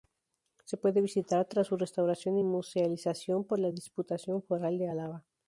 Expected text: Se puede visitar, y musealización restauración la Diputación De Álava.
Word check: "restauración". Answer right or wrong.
wrong